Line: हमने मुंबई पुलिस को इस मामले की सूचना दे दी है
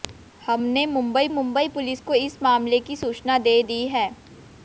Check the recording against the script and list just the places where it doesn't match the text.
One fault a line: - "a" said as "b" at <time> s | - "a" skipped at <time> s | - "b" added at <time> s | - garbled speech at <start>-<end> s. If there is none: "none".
- "मुंबई" added at 1.3 s